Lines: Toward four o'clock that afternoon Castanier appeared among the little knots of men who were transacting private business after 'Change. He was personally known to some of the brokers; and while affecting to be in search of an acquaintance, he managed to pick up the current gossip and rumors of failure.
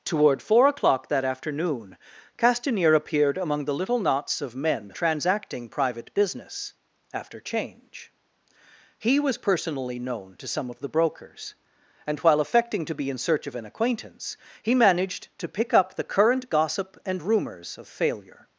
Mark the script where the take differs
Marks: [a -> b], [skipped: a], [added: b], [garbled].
Toward four o'clock that afternoon Castanier appeared among the little knots of men [skipped: who were] transacting private business after 'Change. He was personally known to some of the brokers; and while affecting to be in search of an acquaintance, he managed to pick up the current gossip and rumors of failure.